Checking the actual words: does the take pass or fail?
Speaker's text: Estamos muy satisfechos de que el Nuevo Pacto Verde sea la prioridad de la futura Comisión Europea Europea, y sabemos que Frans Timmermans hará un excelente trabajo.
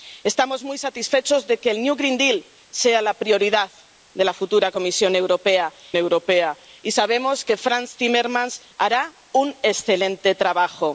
pass